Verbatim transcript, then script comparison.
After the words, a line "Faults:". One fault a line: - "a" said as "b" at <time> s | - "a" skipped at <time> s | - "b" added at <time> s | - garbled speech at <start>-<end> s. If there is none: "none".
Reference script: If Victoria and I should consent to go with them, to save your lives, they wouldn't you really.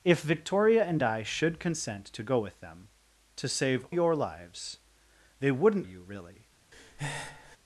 If Victoria and I should consent to go with them, to save your lives, they wouldn't you really.
Faults:
none